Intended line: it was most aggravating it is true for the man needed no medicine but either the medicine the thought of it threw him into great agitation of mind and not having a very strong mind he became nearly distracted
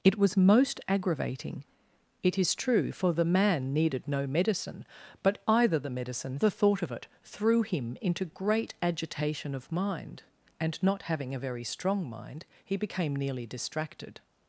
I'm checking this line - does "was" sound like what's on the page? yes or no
yes